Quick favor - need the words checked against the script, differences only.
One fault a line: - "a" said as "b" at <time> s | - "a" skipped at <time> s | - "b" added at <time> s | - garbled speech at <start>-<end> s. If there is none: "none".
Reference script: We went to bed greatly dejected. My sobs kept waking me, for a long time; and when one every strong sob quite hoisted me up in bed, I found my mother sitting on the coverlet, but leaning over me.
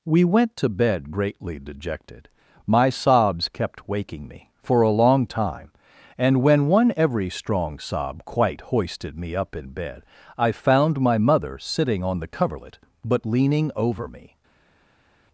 none